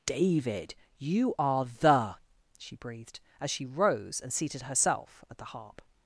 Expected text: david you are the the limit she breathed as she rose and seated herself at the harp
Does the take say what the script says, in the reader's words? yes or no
no